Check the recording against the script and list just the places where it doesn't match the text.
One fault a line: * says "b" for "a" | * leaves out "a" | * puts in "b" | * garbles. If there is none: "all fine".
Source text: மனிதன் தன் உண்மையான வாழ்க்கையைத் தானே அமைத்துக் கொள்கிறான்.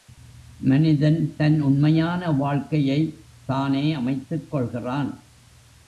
all fine